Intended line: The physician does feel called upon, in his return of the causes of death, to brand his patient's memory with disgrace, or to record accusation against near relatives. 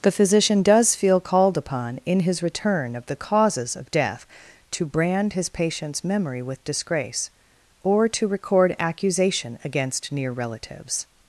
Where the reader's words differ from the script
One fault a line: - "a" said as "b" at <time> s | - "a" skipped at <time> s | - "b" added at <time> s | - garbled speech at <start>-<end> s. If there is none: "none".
none